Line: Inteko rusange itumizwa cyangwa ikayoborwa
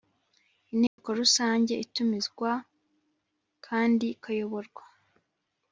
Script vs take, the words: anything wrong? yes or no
yes